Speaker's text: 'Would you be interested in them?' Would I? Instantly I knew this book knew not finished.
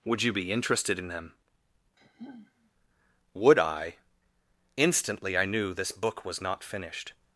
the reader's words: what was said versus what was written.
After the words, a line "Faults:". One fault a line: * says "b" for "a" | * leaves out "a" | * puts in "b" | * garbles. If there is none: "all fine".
'Would you be interested in them?' Would I? Instantly I knew this book was not finished.
Faults:
* says "was" for "knew"